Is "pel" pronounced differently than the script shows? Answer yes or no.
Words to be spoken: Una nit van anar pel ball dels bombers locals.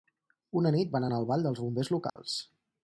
yes